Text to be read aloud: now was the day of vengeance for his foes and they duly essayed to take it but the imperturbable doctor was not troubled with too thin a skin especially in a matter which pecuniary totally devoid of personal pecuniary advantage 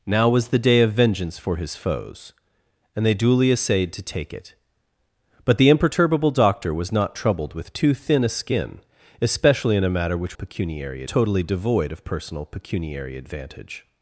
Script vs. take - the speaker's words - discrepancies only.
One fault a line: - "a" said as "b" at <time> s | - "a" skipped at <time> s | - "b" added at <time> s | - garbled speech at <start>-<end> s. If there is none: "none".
none